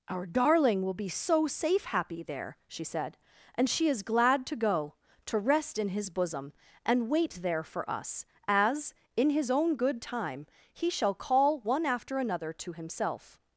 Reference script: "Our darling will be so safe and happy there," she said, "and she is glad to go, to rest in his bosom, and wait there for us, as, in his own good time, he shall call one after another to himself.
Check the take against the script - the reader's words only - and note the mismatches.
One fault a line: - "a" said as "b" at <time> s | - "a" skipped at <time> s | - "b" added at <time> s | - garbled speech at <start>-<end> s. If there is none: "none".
- "and" skipped at 1.9 s